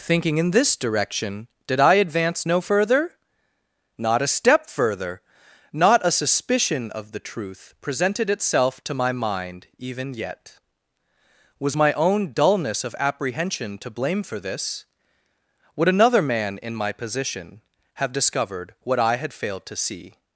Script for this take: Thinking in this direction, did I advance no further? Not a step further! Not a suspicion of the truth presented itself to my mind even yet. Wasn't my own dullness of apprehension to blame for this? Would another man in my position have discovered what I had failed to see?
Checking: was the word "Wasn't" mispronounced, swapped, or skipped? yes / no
yes